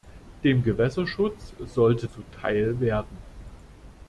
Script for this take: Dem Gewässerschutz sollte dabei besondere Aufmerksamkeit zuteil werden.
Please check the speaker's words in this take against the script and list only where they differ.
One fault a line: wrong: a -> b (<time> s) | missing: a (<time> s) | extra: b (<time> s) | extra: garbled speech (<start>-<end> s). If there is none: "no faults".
missing: dabei besondere Aufmerksamkeit (2.1 s)